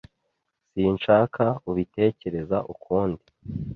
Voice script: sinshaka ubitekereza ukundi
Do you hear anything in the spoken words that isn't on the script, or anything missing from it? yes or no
no